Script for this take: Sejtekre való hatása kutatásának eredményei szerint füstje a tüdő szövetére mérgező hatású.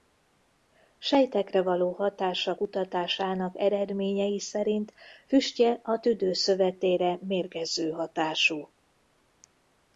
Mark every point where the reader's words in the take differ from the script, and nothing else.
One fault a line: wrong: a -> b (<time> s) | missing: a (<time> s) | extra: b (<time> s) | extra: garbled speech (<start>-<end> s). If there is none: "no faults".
no faults